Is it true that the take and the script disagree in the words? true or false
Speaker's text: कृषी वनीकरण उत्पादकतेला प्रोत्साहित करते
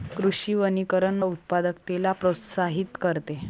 false